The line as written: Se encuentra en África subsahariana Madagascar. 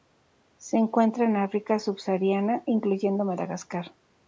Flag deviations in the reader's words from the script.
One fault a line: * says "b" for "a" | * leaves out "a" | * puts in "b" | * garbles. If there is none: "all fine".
* puts in "incluyendo"